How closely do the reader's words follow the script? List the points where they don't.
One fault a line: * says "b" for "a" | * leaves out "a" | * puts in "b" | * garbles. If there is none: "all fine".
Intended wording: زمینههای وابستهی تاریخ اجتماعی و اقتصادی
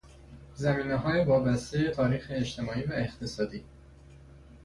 all fine